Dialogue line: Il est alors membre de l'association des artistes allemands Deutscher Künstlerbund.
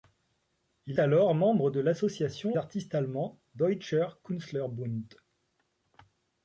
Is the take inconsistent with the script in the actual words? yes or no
yes